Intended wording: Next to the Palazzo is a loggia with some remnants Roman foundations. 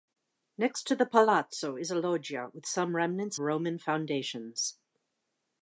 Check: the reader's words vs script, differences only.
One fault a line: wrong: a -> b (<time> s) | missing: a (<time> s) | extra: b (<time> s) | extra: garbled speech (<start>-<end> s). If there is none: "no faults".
no faults